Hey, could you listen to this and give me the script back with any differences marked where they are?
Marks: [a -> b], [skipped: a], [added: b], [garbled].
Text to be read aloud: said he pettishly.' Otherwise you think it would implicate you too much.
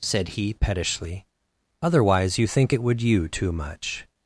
said he pettishly.' Otherwise you think it would [skipped: implicate] you too much.